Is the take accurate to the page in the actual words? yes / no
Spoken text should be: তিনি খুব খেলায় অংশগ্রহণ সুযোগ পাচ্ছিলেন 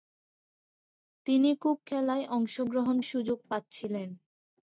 yes